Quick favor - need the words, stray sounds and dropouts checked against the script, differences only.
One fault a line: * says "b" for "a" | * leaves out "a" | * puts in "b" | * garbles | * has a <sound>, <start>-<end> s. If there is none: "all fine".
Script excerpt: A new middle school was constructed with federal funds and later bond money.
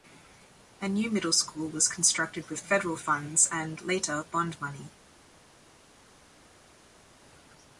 all fine